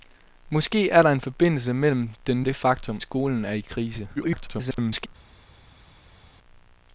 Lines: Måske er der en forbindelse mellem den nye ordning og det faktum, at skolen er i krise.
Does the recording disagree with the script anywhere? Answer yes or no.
yes